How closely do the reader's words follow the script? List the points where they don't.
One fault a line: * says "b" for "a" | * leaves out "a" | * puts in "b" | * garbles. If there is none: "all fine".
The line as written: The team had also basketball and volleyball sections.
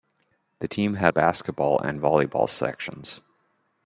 * leaves out "also"